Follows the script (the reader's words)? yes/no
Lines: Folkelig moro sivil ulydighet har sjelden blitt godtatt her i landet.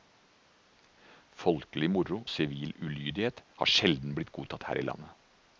yes